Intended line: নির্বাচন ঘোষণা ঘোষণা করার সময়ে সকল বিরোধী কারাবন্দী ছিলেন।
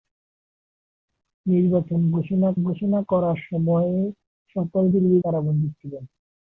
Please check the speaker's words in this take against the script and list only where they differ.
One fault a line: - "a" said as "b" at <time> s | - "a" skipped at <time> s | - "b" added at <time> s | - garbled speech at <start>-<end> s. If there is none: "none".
none